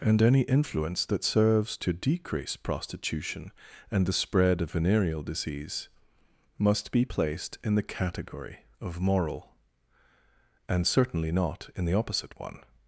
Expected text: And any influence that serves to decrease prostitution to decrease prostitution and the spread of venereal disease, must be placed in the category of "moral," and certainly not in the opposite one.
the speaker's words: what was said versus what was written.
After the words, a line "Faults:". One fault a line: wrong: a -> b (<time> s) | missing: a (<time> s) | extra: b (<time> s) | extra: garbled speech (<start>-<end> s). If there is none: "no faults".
And any influence that serves to decrease prostitution and the spread of venereal disease, must be placed in the category of "moral," and certainly not in the opposite one.
Faults:
missing: to decrease prostitution (3.5 s)